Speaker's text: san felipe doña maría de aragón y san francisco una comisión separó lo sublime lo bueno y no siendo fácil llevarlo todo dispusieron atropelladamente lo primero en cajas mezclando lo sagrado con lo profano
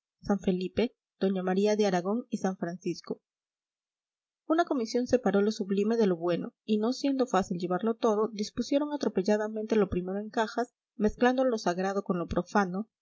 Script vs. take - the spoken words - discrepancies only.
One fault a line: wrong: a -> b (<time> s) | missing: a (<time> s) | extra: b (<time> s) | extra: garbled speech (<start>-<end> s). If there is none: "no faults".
extra: de (6.0 s)